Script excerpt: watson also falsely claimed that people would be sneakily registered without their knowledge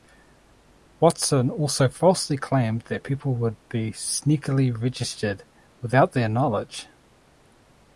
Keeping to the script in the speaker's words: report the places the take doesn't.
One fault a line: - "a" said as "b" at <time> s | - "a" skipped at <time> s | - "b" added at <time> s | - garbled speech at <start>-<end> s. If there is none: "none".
none